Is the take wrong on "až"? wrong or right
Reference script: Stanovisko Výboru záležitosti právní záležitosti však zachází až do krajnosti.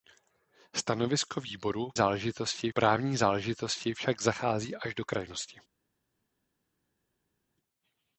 right